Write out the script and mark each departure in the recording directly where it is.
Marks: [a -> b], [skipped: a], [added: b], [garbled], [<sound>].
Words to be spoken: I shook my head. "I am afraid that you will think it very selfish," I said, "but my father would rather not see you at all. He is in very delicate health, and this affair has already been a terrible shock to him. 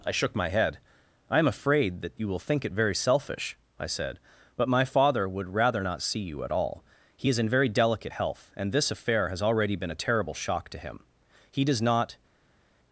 I shook my head. "I am afraid that you will think it very selfish," I said, "but my father would rather not see you at all. He is in very delicate health, and this affair has already been a terrible shock to him. [added: He does not]